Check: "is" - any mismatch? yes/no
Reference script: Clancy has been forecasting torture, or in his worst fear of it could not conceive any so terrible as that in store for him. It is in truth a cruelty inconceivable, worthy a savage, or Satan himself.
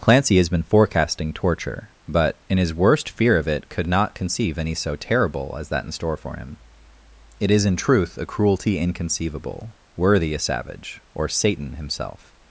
no